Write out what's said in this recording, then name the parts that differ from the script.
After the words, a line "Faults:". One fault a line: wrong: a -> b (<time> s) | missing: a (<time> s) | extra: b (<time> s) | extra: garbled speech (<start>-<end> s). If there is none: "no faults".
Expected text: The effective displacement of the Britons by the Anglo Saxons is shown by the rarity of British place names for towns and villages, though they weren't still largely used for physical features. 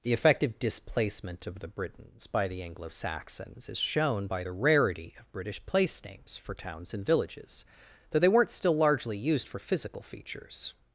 The effective displacement of the Britons by the Anglo Saxons is shown by the rarity of British place names for towns and villages, though they weren't still largely used for physical features.
Faults:
no faults